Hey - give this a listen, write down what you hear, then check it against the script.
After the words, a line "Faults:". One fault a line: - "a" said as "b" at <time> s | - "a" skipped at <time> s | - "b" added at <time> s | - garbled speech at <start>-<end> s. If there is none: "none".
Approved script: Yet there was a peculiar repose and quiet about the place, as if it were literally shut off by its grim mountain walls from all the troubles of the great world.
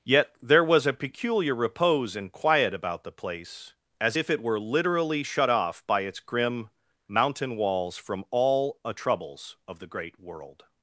Yet there was a peculiar repose and quiet about the place, as if it were literally shut off by its grim mountain walls from all a troubles of the great world.
Faults:
- "the" said as "a" at 8.8 s